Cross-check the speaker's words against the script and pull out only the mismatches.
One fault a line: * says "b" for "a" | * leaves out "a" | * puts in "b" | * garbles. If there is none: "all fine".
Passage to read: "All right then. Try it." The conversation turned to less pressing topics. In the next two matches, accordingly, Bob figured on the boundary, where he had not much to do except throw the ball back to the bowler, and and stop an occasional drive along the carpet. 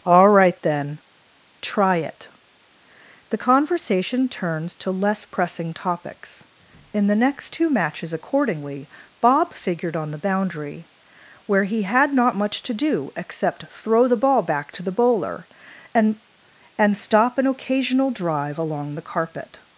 all fine